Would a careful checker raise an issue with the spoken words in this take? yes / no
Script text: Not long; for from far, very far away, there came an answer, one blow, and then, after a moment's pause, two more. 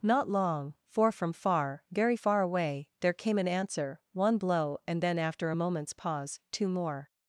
no